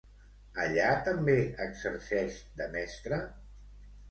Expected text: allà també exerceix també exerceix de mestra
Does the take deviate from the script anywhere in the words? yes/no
yes